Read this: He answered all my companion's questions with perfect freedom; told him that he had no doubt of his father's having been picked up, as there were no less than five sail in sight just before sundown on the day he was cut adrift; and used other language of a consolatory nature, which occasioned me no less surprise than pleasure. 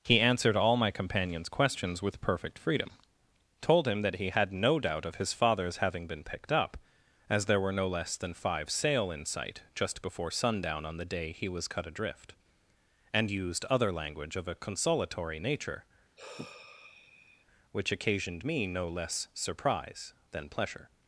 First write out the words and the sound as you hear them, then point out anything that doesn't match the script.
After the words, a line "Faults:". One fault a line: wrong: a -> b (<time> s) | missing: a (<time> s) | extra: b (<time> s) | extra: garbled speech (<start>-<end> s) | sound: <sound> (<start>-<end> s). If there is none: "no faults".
He answered all my companion's questions with perfect freedom; told him that he had no doubt of his father's having been picked up, as there were no less than five sail in sight just before sundown on the day he was cut adrift; and used other language of a consolatory nature, which occasioned me no less surprise than pleasure.
Faults:
sound: sigh (16.2-17.4 s)